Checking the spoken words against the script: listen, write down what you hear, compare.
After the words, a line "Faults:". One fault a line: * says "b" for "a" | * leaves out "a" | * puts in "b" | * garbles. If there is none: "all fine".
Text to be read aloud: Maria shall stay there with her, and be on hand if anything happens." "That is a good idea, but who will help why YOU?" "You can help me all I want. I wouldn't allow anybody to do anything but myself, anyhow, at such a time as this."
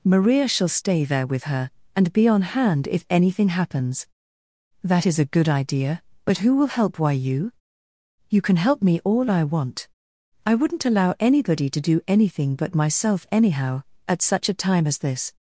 Maria shall stay there with her, and be on hand if anything happens." "That is a good idea, but who will help why YOU?" "You can help me all I want. I wouldn't allow anybody to do anything but myself, anyhow, at such a time as this."
Faults:
all fine